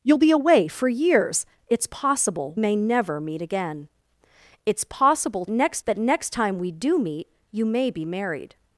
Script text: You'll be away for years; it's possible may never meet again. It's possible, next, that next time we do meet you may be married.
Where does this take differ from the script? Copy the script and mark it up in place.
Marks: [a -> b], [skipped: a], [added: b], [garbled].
You'll be away for years; it's possible may never meet again. It's possible, next, that next time we do meet you may be married.